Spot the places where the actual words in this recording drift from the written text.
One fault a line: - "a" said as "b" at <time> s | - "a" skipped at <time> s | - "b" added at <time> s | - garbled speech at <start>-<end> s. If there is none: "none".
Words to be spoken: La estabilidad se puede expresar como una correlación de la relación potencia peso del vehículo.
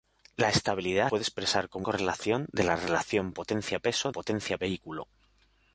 - "se" skipped at 1.1 s
- "una" skipped at 1.9 s
- "del" said as "potencia" at 4.1 s